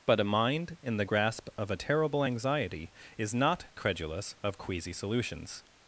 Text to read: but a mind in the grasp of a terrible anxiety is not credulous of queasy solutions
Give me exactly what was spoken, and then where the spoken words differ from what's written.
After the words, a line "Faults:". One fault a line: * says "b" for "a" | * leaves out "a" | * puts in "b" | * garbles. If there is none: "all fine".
but a mind in the grasp of a terrible anxiety is not credulous of queasy solutions
Faults:
all fine